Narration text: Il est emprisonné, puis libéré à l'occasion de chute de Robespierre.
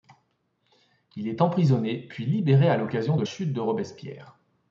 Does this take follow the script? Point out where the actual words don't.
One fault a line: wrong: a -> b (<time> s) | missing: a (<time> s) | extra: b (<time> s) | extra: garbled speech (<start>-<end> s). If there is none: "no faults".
no faults